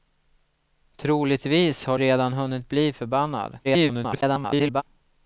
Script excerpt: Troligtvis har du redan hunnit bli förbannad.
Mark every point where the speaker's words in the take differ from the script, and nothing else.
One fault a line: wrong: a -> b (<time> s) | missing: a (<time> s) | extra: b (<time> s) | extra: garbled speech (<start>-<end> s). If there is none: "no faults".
missing: du (2.0 s)
extra: garbled speech (3.6-4.8 s)